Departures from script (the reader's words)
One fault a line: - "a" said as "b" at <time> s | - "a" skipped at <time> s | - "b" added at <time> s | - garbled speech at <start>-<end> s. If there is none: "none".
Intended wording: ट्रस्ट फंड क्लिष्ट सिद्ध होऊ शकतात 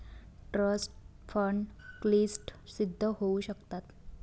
none